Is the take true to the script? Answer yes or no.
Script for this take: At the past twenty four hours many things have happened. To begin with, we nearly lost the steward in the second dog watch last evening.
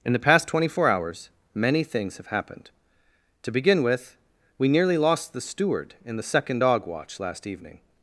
no